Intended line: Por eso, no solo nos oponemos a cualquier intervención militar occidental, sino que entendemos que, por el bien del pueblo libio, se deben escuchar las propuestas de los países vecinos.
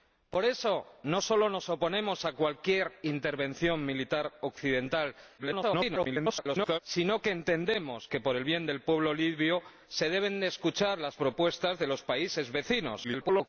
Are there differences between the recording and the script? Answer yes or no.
yes